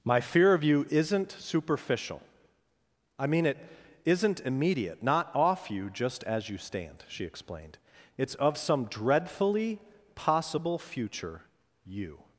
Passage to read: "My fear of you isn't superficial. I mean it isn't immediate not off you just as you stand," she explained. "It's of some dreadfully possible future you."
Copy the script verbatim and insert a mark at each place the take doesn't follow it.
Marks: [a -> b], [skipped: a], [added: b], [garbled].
"My fear of you isn't superficial. I mean it isn't immediate not off you just as you stand," she explained. "It's of some dreadfully possible future you."